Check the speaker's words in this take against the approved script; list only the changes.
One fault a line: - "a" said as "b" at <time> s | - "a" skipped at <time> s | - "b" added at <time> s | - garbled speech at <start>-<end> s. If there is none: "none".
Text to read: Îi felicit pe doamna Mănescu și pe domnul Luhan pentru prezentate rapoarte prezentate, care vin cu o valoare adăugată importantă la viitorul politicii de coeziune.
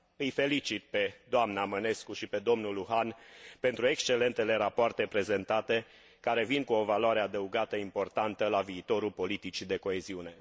- "prezentate" said as "excelentele" at 3.9 s